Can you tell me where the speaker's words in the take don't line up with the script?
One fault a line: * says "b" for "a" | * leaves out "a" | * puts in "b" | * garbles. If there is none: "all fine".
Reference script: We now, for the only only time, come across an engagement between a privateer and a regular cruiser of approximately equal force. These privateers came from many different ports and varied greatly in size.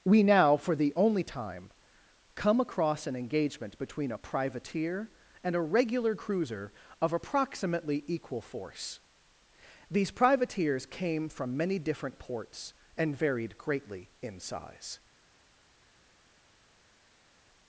* leaves out "only"